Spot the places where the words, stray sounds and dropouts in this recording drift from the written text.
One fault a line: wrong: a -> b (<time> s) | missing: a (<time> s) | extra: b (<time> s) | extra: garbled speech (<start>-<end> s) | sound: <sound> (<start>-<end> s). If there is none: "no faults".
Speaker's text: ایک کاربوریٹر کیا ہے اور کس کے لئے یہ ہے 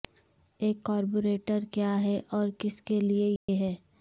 sound: dropout (3.4-3.5 s)